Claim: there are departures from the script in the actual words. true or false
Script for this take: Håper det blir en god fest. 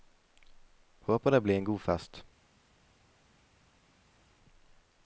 false